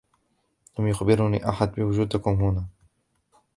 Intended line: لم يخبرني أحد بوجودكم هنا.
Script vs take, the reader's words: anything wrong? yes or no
no